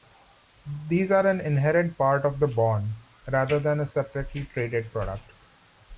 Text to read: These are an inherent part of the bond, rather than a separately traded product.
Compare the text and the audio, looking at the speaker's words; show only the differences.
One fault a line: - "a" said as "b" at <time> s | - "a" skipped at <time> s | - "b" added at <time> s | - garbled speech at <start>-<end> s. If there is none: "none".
none